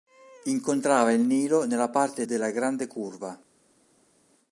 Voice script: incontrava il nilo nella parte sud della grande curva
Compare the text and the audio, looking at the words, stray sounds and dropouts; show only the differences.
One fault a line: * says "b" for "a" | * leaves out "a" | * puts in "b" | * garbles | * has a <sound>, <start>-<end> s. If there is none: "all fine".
* leaves out "sud"